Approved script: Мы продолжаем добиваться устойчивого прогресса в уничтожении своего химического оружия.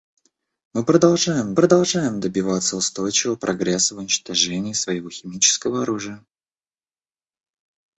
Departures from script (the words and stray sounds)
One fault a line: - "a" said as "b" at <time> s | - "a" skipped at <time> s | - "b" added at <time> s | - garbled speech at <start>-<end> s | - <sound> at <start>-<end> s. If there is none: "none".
- "продолжаем" added at 1.5 s